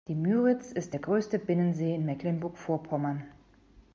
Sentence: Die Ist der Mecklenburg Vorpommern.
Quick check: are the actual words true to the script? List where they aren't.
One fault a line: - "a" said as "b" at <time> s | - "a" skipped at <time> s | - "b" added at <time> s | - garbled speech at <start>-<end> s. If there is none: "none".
- "Müritz" added at 0.1 s
- "größte Binnensee in" added at 1.0 s